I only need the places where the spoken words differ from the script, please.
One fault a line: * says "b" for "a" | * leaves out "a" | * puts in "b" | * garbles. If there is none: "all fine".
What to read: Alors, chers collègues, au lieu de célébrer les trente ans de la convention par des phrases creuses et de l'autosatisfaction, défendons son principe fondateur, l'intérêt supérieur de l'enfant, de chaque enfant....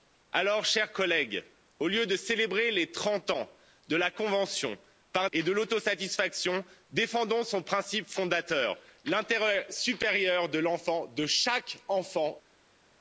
* leaves out "des phrases creuses"